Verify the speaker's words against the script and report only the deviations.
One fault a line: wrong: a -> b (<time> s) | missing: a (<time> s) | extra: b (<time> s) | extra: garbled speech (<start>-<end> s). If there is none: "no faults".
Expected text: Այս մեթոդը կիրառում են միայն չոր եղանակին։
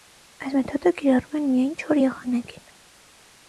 no faults